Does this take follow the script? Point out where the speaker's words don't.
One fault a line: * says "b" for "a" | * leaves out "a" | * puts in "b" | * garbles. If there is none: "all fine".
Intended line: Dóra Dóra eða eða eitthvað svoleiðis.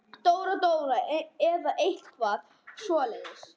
* leaves out "eða"